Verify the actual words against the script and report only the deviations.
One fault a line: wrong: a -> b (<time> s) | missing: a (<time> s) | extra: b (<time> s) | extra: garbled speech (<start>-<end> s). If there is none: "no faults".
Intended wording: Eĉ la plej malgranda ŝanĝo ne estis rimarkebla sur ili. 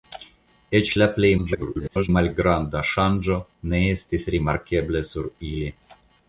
extra: garbled speech (1.4-2.1 s)